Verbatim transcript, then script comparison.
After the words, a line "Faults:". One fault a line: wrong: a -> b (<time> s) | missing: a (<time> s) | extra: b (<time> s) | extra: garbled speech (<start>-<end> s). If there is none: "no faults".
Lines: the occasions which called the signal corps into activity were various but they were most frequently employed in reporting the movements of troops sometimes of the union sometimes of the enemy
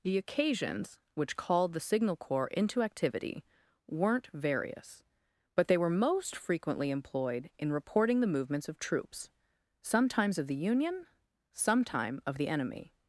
the occasions which called the signal corps into activity weren't various but they were most frequently employed in reporting the movements of troops sometimes of the union sometime of the enemy
Faults:
wrong: were -> weren't (3.9 s)
wrong: sometimes -> sometime (11.5 s)